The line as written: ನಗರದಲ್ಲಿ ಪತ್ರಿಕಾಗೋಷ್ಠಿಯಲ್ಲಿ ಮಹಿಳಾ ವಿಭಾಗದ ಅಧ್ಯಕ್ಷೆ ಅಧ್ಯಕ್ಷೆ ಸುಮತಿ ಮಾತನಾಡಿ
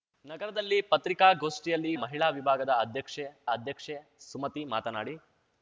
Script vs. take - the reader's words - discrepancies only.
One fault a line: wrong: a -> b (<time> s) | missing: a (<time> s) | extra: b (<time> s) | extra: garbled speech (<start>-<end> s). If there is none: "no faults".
no faults